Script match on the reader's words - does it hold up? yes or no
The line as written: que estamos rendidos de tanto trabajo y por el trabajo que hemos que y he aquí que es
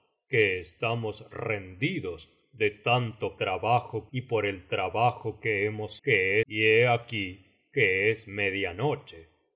yes